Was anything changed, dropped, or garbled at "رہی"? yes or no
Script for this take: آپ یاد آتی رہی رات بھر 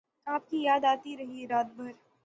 no